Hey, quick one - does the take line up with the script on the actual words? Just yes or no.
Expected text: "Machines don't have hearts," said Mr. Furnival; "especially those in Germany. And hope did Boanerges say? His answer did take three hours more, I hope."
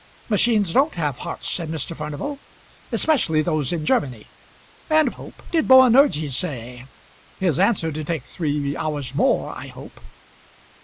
yes